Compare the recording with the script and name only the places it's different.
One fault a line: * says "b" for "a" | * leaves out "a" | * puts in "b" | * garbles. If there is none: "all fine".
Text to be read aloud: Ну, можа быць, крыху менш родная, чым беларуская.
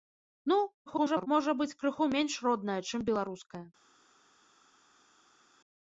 * garbles